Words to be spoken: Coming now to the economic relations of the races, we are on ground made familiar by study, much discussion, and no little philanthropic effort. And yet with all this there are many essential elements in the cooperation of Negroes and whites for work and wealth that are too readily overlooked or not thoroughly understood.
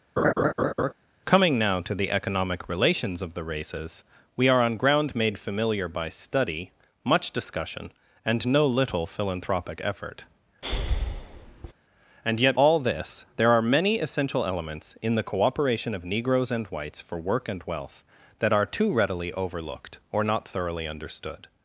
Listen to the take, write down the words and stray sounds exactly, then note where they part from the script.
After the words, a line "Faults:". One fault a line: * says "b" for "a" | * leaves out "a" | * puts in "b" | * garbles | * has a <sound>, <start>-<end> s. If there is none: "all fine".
Coming now to the economic relations of the races, we are on ground made familiar by study, much discussion, and no little philanthropic effort. And yet all this there are many essential elements in the cooperation of Negroes and whites for work and wealth that are too readily overlooked or not thoroughly understood.
Faults:
* has a laugh, 0.2-0.9 s
* has a breath, 10.6-11.7 s
* leaves out "with"